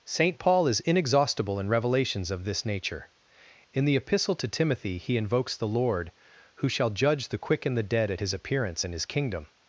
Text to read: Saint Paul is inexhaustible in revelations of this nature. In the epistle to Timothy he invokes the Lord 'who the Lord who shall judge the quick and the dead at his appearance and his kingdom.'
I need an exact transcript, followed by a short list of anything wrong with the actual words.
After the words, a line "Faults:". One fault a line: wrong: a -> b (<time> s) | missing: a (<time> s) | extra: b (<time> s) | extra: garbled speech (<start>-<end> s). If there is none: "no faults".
Saint Paul is inexhaustible in revelations of this nature. In the epistle to Timothy he invokes the Lord 'who shall judge the quick and the dead at his appearance and his kingdom.'
Faults:
missing: the Lord who (6.7 s)